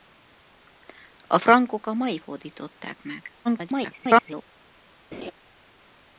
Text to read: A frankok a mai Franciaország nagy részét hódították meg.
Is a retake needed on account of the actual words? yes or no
yes